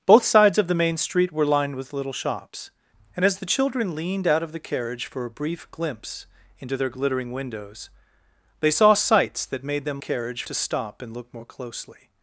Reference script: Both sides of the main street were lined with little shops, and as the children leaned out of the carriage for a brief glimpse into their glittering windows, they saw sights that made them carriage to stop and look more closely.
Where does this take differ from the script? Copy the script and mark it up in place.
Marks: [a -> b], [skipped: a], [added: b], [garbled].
Both sides of the main street were lined with little shops, and as the children leaned out of the carriage for a brief glimpse into their glittering windows, they saw sights that made them carriage to stop and look more closely.